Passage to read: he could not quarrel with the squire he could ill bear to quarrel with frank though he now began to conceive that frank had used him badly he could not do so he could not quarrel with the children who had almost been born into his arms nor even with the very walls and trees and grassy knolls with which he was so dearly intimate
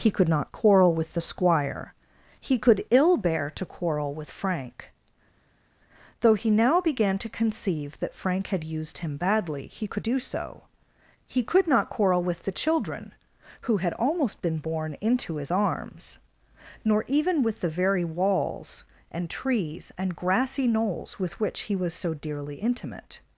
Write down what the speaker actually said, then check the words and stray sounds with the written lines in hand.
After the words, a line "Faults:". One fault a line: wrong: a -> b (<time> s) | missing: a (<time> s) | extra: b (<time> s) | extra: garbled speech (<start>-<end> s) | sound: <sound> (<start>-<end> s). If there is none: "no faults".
he could not quarrel with the squire he could ill bear to quarrel with frank though he now began to conceive that frank had used him badly he could do so he could not quarrel with the children who had almost been born into his arms nor even with the very walls and trees and grassy knolls with which he was so dearly intimate
Faults:
missing: not (10.0 s)